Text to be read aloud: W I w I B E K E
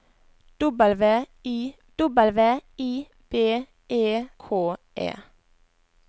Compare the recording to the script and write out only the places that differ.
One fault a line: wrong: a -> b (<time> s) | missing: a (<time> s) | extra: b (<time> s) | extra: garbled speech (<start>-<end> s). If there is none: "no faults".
no faults